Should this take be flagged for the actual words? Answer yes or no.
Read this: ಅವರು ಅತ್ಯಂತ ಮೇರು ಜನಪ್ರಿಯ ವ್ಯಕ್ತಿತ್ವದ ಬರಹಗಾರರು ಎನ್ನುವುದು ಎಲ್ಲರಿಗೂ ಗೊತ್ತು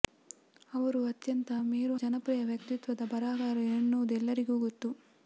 no